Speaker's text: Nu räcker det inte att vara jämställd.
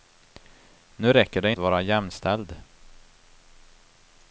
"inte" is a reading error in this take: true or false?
true